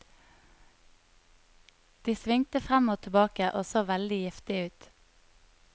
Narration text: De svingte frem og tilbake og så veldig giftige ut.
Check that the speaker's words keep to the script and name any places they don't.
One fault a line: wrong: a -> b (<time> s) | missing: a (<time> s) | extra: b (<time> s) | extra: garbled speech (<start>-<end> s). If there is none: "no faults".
no faults